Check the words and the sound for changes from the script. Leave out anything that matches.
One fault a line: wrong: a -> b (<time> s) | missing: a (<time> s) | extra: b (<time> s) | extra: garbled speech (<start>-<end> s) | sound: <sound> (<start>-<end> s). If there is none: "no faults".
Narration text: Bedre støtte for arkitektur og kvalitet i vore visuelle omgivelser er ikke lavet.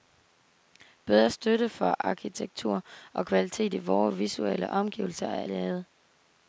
missing: ikke (5.5 s)